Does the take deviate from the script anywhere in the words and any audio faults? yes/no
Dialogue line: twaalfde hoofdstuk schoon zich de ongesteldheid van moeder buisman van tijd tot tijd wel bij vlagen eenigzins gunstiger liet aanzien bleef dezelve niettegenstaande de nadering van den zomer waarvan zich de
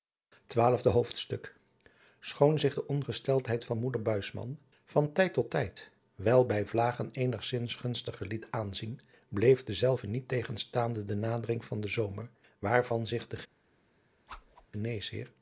yes